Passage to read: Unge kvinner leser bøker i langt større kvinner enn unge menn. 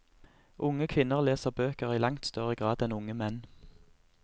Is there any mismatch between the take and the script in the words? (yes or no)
yes